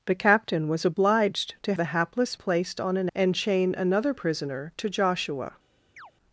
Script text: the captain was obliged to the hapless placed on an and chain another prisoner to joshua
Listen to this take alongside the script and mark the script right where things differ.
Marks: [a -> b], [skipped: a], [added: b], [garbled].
the captain was obliged to the hapless placed on an and chain another prisoner to joshua